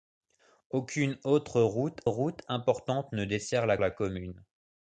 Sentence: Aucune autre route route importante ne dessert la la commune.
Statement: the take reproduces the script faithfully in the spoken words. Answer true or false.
true